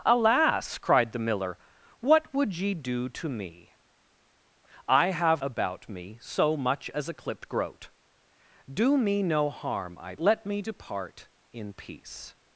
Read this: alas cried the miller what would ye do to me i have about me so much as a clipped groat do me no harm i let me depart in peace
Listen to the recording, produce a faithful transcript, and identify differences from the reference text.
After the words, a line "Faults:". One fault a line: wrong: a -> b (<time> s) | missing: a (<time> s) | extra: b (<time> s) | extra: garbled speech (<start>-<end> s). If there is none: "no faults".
alas cried the miller what would ye do to me i have about me so much as a clipped groat do me no harm i let me depart in peace
Faults:
no faults